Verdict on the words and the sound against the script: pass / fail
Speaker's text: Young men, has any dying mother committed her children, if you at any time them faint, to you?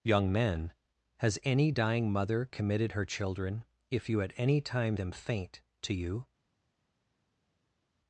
pass